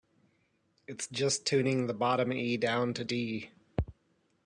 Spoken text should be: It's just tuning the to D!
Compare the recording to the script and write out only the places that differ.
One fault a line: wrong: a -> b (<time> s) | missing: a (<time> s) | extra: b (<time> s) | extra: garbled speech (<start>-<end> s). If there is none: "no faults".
extra: bottom E down (1.9 s)